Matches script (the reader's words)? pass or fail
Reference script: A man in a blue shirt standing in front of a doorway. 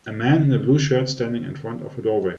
pass